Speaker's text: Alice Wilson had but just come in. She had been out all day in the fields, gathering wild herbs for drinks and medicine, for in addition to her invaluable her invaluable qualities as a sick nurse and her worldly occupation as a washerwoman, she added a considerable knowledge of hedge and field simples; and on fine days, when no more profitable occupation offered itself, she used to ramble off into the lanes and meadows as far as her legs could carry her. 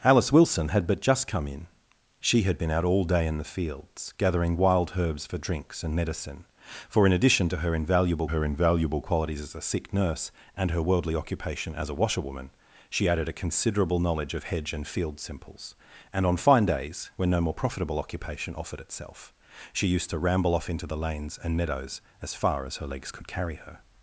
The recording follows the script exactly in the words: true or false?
true